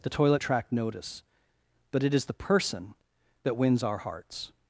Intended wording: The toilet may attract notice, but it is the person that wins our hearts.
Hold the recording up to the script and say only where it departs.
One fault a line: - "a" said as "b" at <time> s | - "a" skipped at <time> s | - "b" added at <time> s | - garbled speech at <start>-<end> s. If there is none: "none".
- "may" skipped at 0.4 s